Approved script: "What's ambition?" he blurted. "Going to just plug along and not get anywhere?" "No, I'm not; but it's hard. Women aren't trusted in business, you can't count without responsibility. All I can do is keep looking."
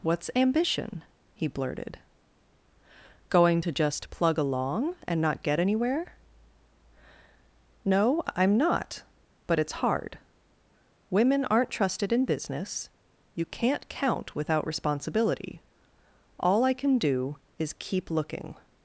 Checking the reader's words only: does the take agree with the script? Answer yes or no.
yes